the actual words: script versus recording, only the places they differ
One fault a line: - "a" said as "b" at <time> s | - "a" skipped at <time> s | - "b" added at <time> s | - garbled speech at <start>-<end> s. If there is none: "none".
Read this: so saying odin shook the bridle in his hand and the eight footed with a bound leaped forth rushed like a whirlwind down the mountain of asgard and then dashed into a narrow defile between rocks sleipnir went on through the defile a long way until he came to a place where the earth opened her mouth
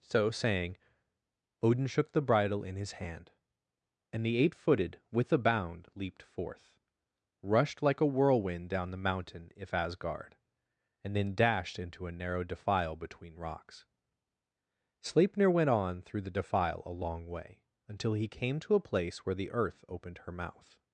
- "of" said as "if" at 9.6 s